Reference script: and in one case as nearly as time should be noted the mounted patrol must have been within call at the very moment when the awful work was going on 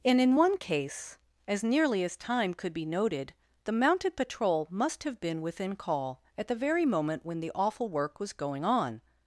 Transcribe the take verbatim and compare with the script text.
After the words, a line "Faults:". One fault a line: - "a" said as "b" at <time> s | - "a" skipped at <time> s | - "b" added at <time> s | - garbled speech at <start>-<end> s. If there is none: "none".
and in one case as nearly as time could be noted the mounted patrol must have been within call at the very moment when the awful work was going on
Faults:
- "should" said as "could" at 2.5 s